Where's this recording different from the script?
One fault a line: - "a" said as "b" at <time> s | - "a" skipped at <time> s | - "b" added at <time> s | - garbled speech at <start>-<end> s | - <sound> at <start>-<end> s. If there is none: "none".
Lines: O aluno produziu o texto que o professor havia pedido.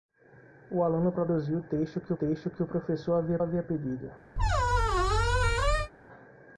- "texto que" added at 2.2 s
- "havia" added at 3.4 s
- squeak at 4.4-5.9 s